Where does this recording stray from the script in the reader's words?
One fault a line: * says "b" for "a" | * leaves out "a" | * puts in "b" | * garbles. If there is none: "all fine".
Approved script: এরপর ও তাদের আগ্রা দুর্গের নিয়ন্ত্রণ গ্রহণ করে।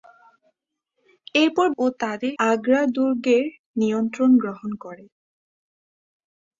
all fine